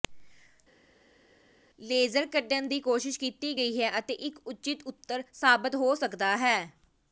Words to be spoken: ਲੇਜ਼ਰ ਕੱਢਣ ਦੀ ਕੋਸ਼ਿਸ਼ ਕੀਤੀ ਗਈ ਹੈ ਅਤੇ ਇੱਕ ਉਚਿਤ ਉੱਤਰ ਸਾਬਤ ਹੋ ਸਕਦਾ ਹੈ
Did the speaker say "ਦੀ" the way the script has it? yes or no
yes